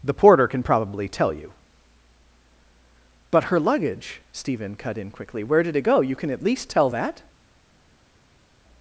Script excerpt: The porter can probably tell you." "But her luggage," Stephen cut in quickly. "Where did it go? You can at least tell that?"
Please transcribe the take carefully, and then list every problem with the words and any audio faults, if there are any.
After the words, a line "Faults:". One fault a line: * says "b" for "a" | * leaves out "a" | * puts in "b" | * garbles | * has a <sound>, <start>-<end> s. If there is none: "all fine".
The porter can probably tell you." "But her luggage," Stephen cut in quickly. "Where did it go? You can at least tell that?"
Faults:
all fine